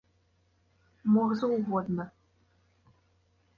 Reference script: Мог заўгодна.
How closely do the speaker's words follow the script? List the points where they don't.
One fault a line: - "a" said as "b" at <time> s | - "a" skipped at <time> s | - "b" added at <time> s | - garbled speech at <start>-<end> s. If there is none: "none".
none